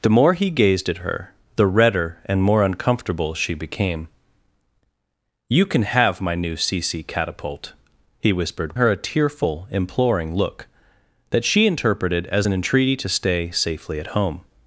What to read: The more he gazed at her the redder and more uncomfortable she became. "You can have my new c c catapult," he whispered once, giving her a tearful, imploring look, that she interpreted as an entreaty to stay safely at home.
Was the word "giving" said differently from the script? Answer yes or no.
yes